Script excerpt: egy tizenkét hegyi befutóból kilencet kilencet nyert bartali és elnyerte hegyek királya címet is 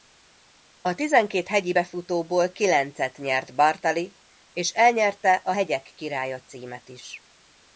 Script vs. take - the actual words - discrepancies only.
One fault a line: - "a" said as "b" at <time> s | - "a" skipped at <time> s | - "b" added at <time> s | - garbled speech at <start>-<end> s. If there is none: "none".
- "egy" said as "a" at 0.8 s
- "kilencet" skipped at 3.2 s
- "a" added at 5.3 s